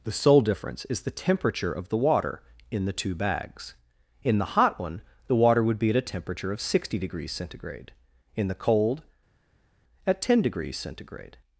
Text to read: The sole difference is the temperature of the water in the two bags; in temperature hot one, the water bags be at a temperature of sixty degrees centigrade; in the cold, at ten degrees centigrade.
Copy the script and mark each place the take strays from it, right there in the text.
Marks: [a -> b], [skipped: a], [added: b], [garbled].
The sole difference is the temperature of the water in the two bags; in [temperature -> the] hot one, the water [bags -> would] be at a temperature of sixty degrees centigrade; in the cold, at ten degrees centigrade.